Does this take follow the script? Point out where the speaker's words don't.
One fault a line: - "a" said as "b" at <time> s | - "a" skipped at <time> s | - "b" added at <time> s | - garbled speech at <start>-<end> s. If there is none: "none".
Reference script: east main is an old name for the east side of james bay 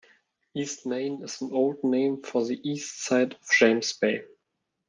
none